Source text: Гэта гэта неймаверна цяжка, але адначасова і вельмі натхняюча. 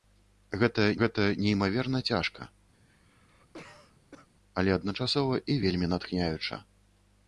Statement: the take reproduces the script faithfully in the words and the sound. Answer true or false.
false